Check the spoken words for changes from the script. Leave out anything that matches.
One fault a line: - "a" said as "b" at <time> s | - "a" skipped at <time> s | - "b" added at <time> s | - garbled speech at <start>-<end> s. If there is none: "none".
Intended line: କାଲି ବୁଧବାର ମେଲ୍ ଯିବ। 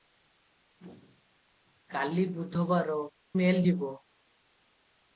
none